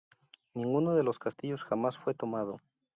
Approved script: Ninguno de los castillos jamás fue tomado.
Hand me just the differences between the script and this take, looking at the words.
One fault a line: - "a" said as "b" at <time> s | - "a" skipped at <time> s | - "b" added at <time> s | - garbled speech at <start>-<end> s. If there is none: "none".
none